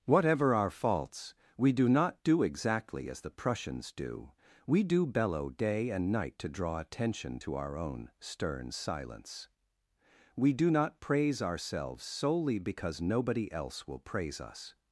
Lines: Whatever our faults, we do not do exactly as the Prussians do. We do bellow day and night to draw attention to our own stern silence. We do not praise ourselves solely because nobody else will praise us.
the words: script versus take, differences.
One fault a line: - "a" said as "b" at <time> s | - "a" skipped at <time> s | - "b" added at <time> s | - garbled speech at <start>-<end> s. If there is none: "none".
none